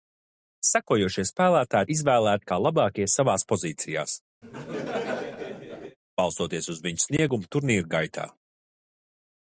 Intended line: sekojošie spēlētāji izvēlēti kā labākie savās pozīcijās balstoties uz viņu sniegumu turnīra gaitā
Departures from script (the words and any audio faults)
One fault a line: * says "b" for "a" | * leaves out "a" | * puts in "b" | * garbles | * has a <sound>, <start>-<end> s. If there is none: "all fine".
* has a laugh, 4.4-6.0 s